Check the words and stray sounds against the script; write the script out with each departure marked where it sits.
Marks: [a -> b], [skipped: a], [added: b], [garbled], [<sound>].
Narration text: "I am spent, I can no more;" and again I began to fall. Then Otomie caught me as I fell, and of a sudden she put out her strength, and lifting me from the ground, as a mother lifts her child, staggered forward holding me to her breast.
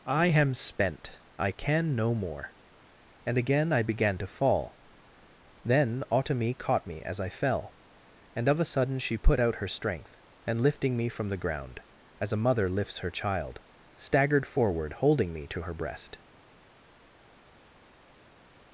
"I am spent, I can no more;" and again I began to fall. Then Otomie caught me as I fell, and of a sudden she put out her strength, and lifting me from the ground, as a mother lifts her child, staggered forward holding me to her breast.